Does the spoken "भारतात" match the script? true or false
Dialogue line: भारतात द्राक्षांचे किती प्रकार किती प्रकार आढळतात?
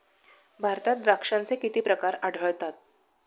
true